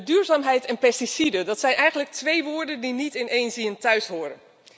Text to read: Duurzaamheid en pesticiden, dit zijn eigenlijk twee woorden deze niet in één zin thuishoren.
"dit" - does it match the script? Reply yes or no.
no